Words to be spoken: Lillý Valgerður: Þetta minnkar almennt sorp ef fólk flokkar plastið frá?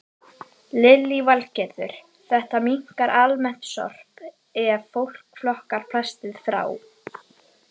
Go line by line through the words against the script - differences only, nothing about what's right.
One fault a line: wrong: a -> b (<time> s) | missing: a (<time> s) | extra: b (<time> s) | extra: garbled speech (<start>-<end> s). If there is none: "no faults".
no faults